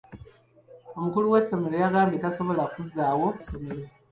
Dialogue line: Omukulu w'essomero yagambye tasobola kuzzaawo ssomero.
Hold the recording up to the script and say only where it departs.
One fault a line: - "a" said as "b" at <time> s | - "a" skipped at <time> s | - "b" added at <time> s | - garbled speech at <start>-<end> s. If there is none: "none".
none